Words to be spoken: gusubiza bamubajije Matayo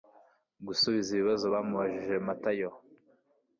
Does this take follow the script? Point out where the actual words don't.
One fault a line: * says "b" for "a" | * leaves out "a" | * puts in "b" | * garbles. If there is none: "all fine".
* puts in "ibibazo"